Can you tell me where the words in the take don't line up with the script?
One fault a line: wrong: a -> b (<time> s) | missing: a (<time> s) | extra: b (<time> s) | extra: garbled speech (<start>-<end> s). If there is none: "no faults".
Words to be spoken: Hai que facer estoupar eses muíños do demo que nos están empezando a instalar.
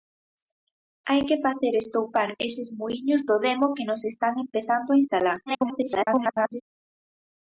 extra: garbled speech (5.5-6.6 s)